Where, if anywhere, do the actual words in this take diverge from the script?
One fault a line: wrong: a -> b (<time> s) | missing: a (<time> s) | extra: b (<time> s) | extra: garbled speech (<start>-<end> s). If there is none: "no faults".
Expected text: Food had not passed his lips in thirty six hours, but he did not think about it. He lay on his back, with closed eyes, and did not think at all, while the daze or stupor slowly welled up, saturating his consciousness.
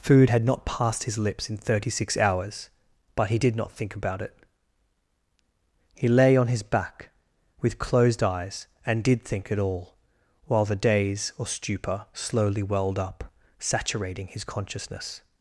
missing: not (9.2 s)